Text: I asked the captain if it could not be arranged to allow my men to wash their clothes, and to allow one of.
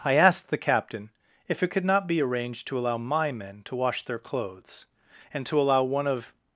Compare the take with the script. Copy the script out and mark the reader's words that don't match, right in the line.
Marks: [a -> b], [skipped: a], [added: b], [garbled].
I asked the captain if it could not be arranged to allow my men to wash their clothes, and to allow one of.